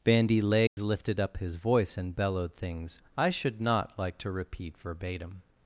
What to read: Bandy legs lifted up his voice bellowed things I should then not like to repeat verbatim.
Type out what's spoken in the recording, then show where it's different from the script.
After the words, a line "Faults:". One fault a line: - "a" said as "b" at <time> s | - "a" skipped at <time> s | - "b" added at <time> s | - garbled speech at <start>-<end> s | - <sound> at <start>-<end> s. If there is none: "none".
Bandy legs lifted up his voice and bellowed things I should not like to repeat verbatim.
Faults:
- dropout at 0.7-0.8 s
- "and" added at 1.9 s
- "then" skipped at 3.6 s